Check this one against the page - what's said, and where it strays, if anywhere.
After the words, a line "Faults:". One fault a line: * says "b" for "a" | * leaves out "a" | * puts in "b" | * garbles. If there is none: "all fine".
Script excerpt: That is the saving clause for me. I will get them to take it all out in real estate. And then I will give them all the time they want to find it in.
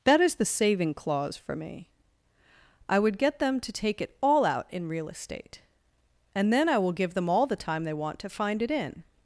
That is the saving clause for me. I would get them to take it all out in real estate. And then I will give them all the time they want to find it in.
Faults:
* says "would" for "will"